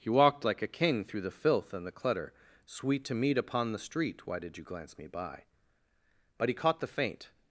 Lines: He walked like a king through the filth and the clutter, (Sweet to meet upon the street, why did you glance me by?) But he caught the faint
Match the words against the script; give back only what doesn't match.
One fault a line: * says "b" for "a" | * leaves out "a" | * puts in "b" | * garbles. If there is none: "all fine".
all fine